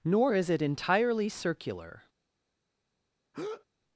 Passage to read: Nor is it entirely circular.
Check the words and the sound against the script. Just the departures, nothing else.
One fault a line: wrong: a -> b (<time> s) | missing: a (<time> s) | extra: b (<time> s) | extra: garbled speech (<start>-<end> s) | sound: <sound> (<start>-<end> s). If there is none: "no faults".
sound: breath (3.3-3.6 s)